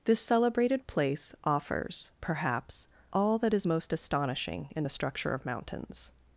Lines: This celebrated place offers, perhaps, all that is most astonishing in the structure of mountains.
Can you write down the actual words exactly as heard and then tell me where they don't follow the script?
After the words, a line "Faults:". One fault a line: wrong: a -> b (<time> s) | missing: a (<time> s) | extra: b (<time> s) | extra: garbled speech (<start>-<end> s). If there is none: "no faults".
This celebrated place offers, perhaps, all that is most astonishing in the structure of mountains.
Faults:
no faults